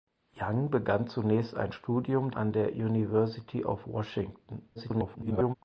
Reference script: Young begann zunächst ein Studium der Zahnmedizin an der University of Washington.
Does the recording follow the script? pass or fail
fail